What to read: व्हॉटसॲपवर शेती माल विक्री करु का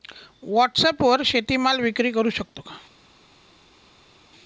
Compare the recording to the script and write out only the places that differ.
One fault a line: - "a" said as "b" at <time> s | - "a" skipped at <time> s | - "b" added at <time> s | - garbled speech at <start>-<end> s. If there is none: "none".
- "शकतो" added at 2.3 s